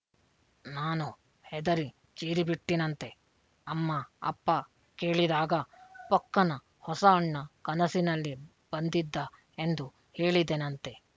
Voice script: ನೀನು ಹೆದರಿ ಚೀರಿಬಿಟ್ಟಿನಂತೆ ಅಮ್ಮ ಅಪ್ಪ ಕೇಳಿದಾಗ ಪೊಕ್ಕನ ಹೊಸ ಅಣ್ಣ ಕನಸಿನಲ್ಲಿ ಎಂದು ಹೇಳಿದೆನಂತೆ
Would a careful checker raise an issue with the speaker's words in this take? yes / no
yes